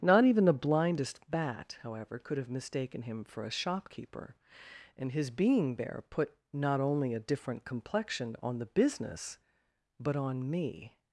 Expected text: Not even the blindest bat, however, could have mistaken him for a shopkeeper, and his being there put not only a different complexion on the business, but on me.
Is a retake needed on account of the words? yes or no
no